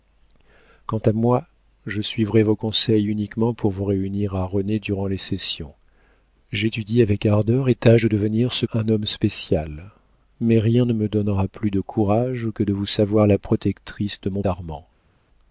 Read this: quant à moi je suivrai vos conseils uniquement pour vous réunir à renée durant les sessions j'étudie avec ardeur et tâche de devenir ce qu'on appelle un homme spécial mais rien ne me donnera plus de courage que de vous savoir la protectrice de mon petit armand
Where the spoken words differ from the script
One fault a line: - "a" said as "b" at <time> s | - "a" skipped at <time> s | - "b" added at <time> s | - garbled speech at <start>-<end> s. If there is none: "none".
- "qu'on appelle" skipped at 8.7 s
- "petit" skipped at 14.4 s